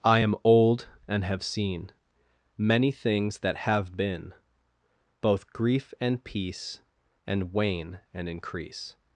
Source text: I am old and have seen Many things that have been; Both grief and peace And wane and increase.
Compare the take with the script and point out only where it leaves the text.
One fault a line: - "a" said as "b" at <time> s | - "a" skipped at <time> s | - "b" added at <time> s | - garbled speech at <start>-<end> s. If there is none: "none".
none